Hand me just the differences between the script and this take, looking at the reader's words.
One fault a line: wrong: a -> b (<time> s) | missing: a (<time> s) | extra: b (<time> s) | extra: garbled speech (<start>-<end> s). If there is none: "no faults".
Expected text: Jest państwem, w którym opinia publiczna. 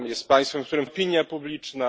no faults